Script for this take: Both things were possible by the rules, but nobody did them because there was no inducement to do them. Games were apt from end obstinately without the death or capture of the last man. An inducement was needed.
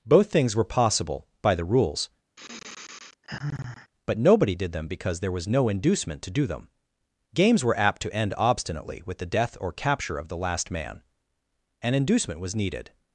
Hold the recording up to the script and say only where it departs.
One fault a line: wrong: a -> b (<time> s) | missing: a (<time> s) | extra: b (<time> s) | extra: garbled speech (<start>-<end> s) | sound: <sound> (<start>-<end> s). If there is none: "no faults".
sound: sigh (2.4-3.9 s)
wrong: from -> to (8.0 s)
wrong: without -> with (9.0 s)